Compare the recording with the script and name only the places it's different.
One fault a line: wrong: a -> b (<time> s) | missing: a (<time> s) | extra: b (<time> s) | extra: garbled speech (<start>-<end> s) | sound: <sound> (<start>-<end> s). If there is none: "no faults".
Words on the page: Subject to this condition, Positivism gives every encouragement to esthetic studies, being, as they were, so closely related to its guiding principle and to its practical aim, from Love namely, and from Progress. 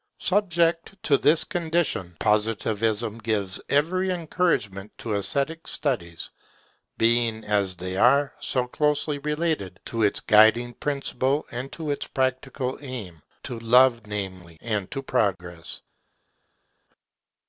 wrong: were -> are (8.0 s)
wrong: from -> to (13.4 s)
wrong: from -> to (14.9 s)